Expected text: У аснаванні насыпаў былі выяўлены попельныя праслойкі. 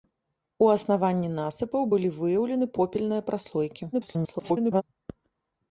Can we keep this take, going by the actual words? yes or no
no